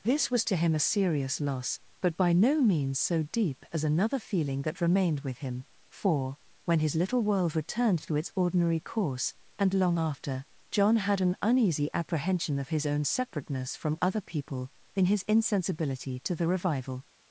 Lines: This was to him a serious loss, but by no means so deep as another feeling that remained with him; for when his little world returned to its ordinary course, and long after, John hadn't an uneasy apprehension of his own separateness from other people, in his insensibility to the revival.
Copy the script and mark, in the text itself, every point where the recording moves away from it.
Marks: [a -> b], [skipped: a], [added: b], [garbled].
This was to him a serious loss, but by no means so deep as another feeling that remained with him; for when his little world returned to its ordinary course, and long after, John [hadn't -> had] an uneasy apprehension of his own separateness from other people, in his insensibility to the revival.